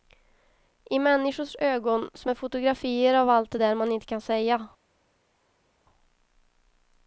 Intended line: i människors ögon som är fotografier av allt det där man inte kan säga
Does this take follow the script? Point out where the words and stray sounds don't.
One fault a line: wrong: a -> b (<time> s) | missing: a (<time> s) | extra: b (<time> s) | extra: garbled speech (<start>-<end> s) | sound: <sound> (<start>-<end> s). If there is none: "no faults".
no faults